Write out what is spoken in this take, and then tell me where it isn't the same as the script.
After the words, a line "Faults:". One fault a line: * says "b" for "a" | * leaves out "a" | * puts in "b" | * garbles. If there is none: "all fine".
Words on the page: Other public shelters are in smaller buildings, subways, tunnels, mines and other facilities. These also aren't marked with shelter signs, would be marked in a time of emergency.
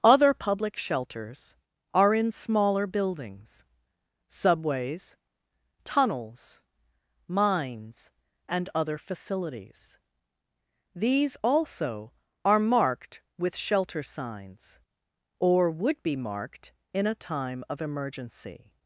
Other public shelters are in smaller buildings, subways, tunnels, mines and other facilities. These also are marked with shelter signs, or would be marked in a time of emergency.
Faults:
* says "are" for "aren't"
* puts in "or"